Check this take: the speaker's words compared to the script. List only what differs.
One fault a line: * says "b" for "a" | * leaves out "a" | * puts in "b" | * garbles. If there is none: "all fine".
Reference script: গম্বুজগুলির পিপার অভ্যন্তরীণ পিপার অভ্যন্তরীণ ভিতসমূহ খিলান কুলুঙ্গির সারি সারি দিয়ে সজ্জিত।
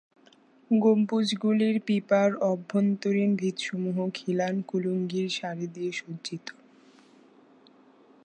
* leaves out "পিপার অভ্যন্তরীণ"
* leaves out "সারি"